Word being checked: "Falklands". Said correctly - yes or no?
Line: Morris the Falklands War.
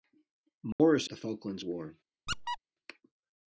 yes